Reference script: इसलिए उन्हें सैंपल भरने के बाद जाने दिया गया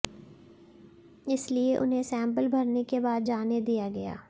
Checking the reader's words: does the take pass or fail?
pass